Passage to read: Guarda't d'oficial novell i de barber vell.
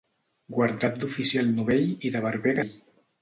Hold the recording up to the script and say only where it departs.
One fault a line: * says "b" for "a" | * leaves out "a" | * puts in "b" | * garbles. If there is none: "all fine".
all fine